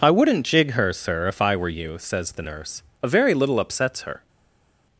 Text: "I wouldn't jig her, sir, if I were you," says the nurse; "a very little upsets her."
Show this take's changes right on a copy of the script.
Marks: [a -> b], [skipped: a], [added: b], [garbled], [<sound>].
"I wouldn't jig her, sir, if I were you," says the nurse; "a very little upsets her."